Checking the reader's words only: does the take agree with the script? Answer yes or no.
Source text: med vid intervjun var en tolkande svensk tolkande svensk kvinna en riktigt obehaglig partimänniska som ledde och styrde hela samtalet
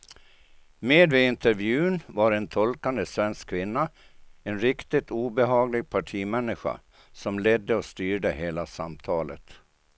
no